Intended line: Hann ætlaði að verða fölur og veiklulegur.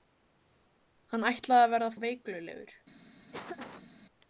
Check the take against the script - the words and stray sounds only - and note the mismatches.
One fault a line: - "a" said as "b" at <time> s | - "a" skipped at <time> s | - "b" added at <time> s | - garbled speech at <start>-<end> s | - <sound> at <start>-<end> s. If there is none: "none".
- "fölur" skipped at 1.9 s
- laugh at 3.3-3.9 s